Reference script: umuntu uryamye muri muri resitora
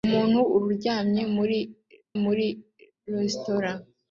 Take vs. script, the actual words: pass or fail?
pass